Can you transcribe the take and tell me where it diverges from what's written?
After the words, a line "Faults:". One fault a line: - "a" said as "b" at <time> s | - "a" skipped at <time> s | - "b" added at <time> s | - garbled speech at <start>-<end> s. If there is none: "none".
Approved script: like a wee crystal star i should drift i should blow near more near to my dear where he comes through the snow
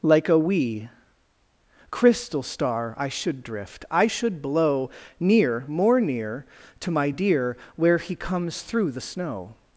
like a wee crystal star i should drift i should blow near more near to my dear where he comes through the snow
Faults:
none